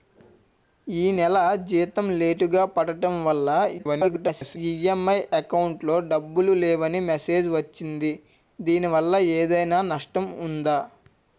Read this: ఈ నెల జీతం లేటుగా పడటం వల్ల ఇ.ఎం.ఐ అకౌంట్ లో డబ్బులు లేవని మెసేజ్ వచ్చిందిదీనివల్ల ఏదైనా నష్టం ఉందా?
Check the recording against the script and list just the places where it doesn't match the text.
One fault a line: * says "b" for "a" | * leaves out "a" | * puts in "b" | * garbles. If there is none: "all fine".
* garbles